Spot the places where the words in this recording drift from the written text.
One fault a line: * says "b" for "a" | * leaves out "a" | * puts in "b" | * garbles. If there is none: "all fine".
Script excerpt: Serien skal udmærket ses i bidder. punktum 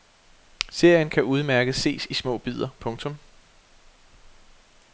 * says "kan" for "skal"
* puts in "små"